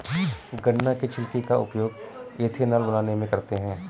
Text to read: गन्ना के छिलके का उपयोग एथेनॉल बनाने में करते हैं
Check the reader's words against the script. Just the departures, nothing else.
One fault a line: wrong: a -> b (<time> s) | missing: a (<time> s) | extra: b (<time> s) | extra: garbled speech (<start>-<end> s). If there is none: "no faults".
no faults